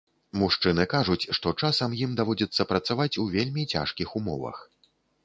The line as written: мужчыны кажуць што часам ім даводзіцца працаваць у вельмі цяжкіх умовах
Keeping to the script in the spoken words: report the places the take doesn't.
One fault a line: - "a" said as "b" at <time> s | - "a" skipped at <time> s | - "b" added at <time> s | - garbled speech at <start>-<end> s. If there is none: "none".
none